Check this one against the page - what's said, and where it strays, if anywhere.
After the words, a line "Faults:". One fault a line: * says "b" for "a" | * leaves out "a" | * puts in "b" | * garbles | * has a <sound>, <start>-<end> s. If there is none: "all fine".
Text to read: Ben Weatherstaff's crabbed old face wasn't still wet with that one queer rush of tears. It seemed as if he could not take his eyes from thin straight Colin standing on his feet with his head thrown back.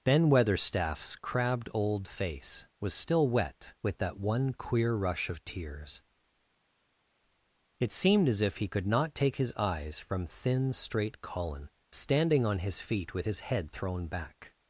Ben Weatherstaff's crabbed old face was still wet with that one queer rush of tears. It seemed as if he could not take his eyes from thin straight Colin standing on his feet with his head thrown back.
Faults:
* says "was" for "wasn't"